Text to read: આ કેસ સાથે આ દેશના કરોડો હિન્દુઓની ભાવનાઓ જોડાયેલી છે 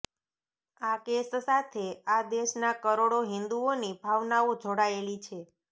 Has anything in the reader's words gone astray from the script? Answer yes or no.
no